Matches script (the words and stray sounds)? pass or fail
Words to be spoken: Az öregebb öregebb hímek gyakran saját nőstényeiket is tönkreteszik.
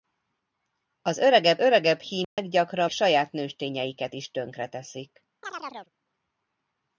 fail